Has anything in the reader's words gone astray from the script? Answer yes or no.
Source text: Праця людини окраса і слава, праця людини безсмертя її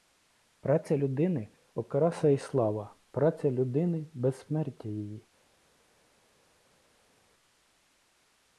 no